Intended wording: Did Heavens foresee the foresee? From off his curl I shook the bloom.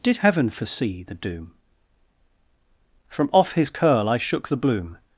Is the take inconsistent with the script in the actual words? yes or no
yes